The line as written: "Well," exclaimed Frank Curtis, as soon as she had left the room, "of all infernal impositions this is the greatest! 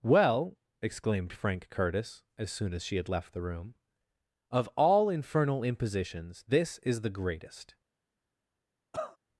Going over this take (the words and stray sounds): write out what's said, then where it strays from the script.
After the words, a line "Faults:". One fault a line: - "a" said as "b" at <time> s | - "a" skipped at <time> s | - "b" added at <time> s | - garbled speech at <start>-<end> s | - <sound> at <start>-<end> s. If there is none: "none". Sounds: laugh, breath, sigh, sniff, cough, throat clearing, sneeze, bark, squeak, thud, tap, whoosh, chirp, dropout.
"Well," exclaimed Frank Curtis, as soon as she had left the room, "of all infernal impositions this is the greatest!
Faults:
- cough at 8.9-9.2 s